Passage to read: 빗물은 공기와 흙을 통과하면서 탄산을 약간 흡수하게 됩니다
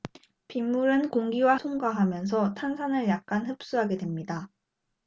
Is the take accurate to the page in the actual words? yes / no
no